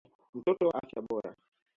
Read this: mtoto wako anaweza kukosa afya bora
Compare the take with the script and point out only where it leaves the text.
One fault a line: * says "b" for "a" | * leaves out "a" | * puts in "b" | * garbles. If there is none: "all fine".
* leaves out "wako anaweza kukosa"